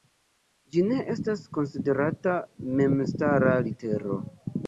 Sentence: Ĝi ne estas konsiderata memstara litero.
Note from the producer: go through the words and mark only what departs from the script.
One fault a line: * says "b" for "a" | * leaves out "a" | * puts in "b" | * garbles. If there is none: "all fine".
all fine